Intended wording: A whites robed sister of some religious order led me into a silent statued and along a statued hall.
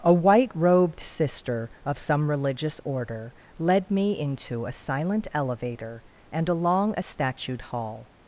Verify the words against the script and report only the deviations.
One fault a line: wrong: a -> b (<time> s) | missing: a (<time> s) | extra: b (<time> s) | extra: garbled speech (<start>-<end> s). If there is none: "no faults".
wrong: whites -> white (0.1 s)
wrong: statued -> elevator (5.3 s)